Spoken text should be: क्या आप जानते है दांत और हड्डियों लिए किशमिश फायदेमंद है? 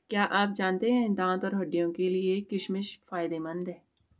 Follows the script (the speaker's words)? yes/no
no